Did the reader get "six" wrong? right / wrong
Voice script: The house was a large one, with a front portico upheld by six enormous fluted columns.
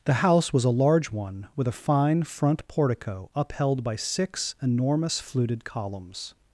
right